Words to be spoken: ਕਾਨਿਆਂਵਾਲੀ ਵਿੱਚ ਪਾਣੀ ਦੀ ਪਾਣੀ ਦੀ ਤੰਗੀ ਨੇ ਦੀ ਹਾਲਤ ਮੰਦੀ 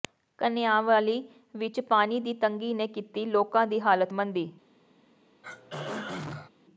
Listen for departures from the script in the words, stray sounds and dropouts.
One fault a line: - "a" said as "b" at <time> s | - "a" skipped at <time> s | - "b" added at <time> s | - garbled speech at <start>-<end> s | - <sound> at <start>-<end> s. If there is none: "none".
- "ਪਾਣੀ ਦੀ ਤੰਗੀ ਨੇ" said as "ਤੰਗੀ ਨੇ ਕੀਤੀ ਲੋਕਾਂ" at 2.4 s
- throat clearing at 5.4-6.5 s